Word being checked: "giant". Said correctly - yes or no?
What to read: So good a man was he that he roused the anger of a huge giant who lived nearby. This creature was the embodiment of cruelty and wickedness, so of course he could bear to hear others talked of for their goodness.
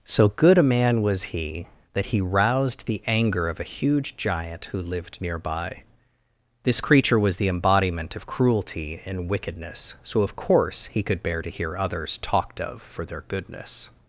yes